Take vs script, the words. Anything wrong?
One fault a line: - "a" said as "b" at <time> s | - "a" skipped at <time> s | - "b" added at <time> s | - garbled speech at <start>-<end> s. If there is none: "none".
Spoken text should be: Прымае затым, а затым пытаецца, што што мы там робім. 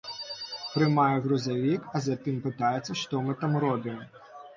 - "затым" said as "грузавік" at 1.2 s
- "што" skipped at 3.2 s